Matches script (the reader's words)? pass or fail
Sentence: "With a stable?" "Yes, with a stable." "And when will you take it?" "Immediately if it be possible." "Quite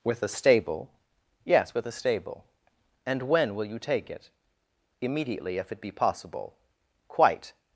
pass